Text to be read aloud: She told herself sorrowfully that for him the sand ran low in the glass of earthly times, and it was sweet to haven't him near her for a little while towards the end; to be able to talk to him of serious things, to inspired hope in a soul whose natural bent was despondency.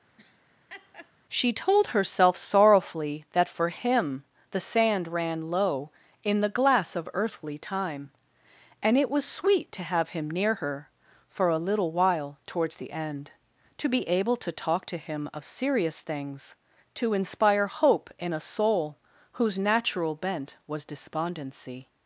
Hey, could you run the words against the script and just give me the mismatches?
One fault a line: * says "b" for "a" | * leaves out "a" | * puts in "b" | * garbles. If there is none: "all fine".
* says "time" for "times"
* says "have" for "haven't"
* says "inspire" for "inspired"